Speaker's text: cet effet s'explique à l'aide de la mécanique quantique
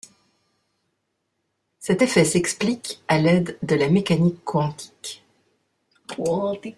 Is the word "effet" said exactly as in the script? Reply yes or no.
yes